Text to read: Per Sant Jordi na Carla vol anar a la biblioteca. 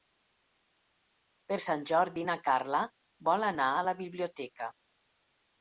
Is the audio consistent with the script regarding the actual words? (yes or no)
yes